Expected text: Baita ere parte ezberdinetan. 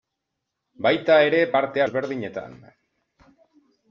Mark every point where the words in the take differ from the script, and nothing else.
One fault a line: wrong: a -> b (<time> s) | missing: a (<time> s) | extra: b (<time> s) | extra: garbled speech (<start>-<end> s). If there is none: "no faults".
no faults